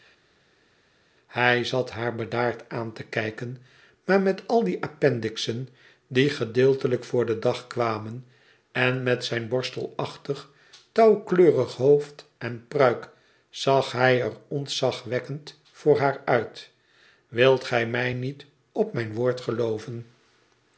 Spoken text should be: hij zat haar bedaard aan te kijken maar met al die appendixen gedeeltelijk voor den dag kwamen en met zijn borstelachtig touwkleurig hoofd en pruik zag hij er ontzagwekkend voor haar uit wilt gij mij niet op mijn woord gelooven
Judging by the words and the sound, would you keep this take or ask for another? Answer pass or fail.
fail